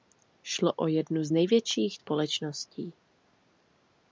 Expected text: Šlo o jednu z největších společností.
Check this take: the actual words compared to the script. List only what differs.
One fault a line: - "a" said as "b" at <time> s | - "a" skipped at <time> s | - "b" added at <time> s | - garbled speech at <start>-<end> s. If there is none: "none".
none